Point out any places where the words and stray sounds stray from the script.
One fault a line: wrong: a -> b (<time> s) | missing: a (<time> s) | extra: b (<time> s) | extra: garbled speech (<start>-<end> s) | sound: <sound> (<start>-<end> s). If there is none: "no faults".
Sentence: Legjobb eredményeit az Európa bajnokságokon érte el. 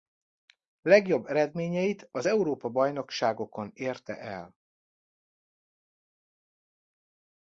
no faults